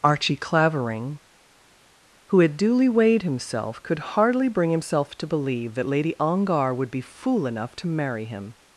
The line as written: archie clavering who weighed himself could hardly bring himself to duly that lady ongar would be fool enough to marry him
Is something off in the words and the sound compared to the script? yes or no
yes